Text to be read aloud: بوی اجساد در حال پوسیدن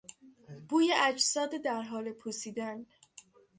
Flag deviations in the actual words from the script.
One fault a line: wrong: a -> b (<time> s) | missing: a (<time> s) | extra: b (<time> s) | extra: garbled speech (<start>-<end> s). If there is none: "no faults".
no faults